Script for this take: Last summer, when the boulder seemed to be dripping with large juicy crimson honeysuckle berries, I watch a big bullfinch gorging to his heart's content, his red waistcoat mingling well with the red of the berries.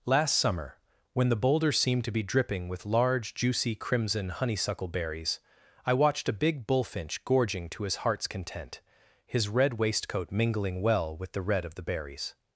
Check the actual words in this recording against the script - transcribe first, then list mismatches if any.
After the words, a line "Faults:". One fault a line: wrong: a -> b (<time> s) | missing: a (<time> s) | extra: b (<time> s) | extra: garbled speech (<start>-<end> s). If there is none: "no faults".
Last summer, when the boulder seemed to be dripping with large juicy crimson honeysuckle berries, I watched a big bullfinch gorging to his heart's content, his red waistcoat mingling well with the red of the berries.
Faults:
wrong: watch -> watched (5.9 s)